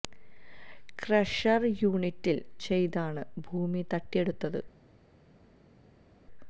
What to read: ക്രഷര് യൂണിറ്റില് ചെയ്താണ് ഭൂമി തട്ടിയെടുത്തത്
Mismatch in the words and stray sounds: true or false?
false